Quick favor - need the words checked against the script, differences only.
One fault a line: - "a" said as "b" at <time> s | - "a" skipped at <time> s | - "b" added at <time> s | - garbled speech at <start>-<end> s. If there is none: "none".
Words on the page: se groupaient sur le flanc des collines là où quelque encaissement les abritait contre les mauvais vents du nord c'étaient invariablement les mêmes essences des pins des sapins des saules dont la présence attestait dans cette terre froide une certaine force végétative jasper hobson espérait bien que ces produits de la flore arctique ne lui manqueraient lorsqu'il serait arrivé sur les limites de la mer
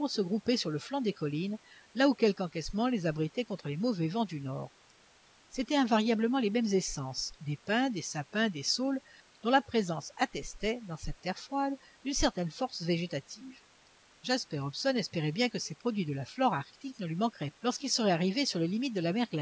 none